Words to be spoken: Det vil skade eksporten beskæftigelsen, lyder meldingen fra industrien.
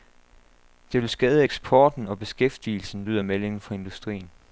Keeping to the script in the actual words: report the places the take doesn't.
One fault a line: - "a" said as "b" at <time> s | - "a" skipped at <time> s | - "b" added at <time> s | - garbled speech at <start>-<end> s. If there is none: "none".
- "og" added at 2.1 s